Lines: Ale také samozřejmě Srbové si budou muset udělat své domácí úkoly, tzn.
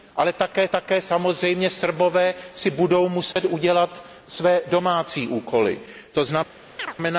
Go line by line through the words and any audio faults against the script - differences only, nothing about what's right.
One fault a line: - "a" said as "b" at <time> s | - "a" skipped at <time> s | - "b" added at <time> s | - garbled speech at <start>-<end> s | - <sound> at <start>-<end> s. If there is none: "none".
- "také" added at 0.7 s
- dropout at 3.3-3.4 s
- chirp at 6.8-7.0 s